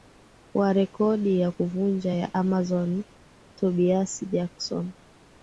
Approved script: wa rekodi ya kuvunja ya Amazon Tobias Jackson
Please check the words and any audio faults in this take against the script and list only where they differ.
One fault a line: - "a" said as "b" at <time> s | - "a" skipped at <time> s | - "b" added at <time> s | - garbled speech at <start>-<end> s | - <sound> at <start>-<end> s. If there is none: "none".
none